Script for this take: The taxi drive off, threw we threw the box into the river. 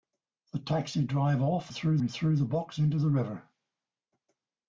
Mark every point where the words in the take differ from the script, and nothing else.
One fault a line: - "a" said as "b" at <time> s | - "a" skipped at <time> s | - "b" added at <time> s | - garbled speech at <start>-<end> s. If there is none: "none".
none